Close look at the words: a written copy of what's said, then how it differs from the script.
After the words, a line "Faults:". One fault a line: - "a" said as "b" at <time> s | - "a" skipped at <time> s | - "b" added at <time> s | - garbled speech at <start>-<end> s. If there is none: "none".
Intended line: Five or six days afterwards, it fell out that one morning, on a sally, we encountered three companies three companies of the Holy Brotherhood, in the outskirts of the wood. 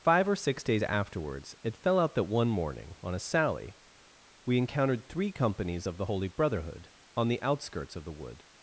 Five or six days afterwards, it fell out that one morning, on a sally, we encountered three companies of the Holy Brotherhood, on the outskirts of the wood.
Faults:
- "three companies" skipped at 5.9 s
- "in" said as "on" at 7.2 s